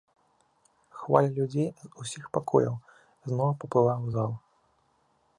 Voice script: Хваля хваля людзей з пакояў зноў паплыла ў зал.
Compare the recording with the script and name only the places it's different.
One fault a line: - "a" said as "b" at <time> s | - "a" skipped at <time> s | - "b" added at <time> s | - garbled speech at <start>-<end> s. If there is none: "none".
- "хваля" skipped at 1.3 s
- "усіх" added at 2.0 s